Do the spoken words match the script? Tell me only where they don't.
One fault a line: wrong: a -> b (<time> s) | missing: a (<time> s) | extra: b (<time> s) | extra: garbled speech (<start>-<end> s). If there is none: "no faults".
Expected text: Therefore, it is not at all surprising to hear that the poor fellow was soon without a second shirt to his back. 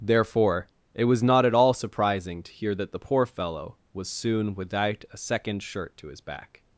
wrong: is -> was (1.1 s)